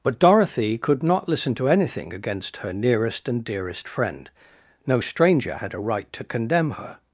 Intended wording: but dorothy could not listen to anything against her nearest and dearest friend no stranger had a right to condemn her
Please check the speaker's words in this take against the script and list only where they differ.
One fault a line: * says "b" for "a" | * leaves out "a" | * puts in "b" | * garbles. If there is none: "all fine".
all fine